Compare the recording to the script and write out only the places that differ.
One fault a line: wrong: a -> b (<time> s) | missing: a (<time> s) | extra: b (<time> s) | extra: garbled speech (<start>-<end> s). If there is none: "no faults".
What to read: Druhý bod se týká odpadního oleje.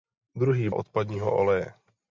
missing: bod se týká (0.7 s)